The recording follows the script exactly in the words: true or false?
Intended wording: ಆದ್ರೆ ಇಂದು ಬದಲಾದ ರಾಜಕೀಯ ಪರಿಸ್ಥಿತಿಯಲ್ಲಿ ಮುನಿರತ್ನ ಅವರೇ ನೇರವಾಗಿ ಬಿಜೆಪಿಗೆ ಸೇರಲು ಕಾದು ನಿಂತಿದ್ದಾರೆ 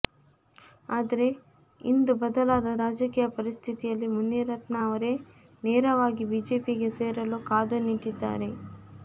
true